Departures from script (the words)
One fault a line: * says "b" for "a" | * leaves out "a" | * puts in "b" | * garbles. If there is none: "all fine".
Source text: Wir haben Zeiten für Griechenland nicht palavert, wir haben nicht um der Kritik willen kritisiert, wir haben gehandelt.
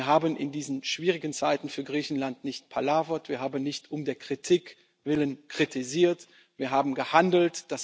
* puts in "in diesen schwierigen"